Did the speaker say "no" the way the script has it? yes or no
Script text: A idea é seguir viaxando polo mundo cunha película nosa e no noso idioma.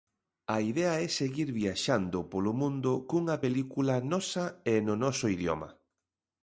yes